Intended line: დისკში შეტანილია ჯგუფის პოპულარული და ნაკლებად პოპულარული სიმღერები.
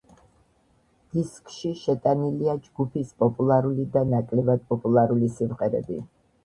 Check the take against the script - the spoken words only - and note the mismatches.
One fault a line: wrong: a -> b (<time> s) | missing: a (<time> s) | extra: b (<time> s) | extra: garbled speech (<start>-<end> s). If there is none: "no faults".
no faults